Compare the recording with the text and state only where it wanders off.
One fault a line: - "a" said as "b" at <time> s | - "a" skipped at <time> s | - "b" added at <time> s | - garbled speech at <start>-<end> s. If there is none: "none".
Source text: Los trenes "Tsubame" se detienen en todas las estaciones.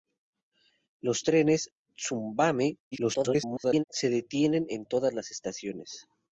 - garbled speech at 2.9-3.8 s